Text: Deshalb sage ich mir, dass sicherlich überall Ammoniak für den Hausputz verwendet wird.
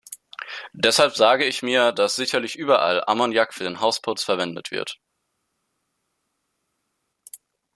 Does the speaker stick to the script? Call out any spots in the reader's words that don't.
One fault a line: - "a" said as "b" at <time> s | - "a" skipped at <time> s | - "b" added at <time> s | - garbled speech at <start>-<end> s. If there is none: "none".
none